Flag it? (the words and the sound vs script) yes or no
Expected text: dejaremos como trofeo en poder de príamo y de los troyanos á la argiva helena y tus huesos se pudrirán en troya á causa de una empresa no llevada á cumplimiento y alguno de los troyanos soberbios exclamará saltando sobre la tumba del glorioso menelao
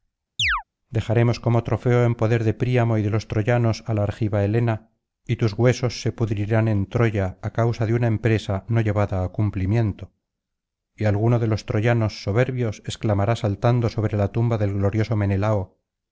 yes